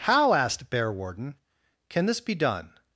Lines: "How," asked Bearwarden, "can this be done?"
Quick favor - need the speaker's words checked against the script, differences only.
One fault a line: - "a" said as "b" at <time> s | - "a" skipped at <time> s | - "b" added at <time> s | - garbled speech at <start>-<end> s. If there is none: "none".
none